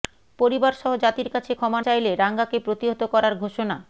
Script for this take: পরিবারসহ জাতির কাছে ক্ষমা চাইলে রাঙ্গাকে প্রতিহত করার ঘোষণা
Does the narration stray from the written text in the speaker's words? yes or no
no